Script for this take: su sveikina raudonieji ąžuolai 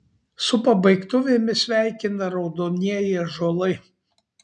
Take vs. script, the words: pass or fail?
fail